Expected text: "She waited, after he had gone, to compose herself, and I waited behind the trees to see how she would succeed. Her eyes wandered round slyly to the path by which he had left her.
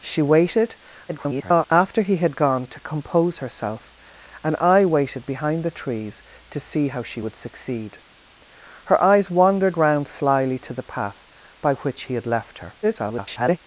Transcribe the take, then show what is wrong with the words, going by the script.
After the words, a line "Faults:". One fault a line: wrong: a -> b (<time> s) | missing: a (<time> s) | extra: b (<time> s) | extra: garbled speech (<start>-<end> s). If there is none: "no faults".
"She waited, [garbled] after he had gone, to compose herself, and I waited behind the trees to see how she would succeed. Her eyes wandered round slyly to the path by which he had left her. [garbled]
Faults:
extra: garbled speech (1.1-1.7 s)
extra: garbled speech (12.8-13.6 s)